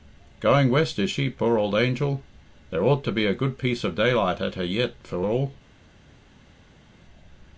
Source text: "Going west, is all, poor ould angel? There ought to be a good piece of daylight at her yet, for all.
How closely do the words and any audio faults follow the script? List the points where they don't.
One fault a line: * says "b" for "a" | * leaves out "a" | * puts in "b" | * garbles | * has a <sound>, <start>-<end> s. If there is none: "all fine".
* says "she" for "all"